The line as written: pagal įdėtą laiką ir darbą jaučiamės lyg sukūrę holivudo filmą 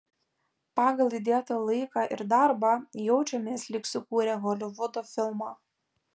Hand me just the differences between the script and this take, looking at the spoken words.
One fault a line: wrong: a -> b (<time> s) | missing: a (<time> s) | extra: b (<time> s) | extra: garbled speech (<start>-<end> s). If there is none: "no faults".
no faults